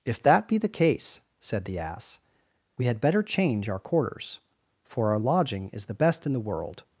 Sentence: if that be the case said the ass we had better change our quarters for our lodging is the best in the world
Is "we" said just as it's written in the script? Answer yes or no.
yes